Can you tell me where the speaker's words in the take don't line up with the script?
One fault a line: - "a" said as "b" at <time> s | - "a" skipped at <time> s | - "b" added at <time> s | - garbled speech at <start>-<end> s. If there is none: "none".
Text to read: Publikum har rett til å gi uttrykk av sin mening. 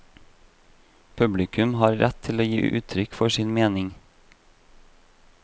- "av" said as "for" at 3.2 s